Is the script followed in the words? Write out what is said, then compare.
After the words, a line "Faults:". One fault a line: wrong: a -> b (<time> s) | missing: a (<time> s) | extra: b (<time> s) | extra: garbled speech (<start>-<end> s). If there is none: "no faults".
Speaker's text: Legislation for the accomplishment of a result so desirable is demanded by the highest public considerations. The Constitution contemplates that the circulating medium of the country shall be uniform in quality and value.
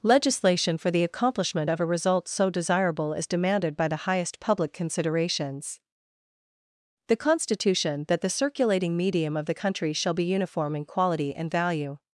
Legislation for the accomplishment of a result so desirable is demanded by the highest public considerations. The Constitution that the circulating medium of the country shall be uniform in quality and value.
Faults:
missing: contemplates (8.0 s)